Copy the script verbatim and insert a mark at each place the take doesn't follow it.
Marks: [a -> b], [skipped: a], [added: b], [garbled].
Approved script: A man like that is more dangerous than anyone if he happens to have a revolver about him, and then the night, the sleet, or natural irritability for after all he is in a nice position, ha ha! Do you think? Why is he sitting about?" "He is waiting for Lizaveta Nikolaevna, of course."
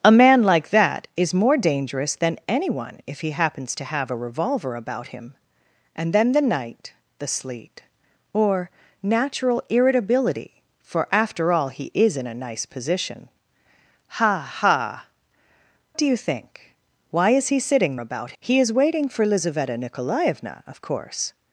A man like that is more dangerous than anyone if he happens to have a revolver about him, and then the night, the sleet, or natural irritability for after all he is in a nice position, ha ha! Do you think? Why is he sitting about?" "He is waiting for Lizaveta Nikolaevna, of course."